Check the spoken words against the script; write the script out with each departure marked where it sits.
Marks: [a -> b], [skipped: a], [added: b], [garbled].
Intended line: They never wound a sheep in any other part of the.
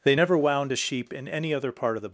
They never wound a sheep in any other part of the.